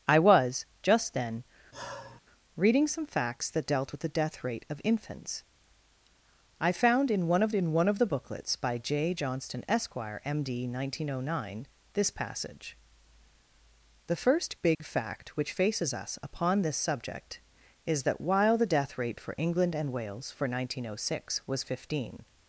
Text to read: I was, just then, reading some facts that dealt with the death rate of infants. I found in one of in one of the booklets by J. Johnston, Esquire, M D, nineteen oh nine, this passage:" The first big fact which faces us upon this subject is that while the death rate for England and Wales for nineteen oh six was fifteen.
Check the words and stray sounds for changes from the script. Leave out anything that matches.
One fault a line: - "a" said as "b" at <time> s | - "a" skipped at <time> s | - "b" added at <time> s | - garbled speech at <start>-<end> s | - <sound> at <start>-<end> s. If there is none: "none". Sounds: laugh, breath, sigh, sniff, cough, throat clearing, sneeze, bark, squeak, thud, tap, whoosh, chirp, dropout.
- sigh at 1.7-2.2 s
- dropout at 14.7-14.8 s